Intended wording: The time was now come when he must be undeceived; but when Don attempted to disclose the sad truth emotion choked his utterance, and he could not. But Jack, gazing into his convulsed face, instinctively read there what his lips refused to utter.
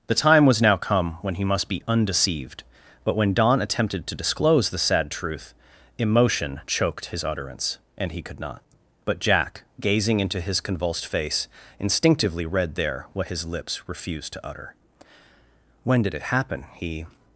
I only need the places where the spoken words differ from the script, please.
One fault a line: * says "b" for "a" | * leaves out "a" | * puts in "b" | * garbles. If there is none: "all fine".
* puts in "When did it happen he"